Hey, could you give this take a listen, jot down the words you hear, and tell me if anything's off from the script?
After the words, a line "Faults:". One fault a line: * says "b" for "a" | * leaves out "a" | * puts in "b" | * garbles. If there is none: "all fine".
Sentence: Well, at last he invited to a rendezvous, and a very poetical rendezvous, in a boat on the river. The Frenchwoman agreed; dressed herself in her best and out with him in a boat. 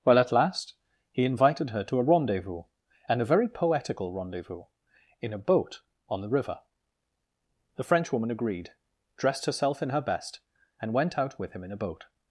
Well, at last he invited her to a rendezvous, and a very poetical rendezvous, in a boat on the river. The Frenchwoman agreed; dressed herself in her best and went out with him in a boat.
Faults:
* puts in "her"
* puts in "went"